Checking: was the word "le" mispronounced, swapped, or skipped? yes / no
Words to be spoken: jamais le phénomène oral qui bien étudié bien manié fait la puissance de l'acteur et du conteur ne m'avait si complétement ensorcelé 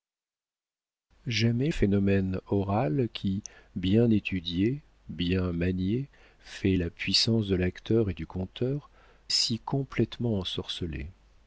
yes